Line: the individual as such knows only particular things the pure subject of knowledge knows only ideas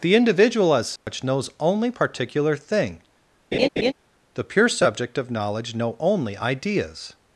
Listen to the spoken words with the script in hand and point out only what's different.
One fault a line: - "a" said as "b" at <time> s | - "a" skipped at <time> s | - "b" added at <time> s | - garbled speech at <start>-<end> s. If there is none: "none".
- "things" said as "thing" at 2.6 s
- "knows" said as "know" at 5.7 s